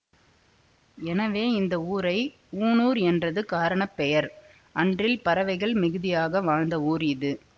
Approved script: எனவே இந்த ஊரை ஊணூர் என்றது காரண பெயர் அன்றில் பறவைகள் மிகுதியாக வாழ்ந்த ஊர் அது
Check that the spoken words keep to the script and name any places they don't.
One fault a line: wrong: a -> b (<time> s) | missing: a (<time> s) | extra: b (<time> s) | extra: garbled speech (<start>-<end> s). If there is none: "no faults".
wrong: அது -> இது (7.1 s)